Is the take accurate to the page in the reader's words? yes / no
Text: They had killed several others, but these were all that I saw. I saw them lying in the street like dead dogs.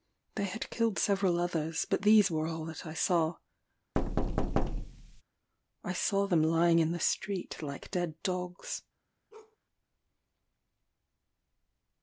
yes